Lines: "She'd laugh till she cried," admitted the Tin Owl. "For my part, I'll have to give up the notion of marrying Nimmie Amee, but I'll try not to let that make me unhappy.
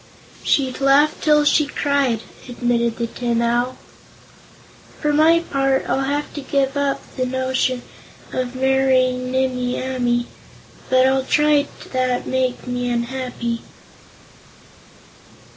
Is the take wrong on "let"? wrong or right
wrong